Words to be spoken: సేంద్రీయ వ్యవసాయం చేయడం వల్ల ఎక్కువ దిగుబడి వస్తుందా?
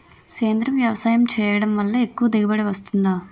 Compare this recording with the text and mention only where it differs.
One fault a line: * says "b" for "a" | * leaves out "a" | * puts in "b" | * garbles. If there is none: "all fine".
all fine